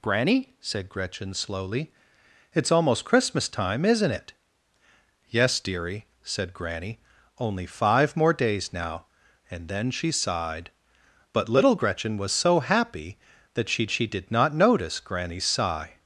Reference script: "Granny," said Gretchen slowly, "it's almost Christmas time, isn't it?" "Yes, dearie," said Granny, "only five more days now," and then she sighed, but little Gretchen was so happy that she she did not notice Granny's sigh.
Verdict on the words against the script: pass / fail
pass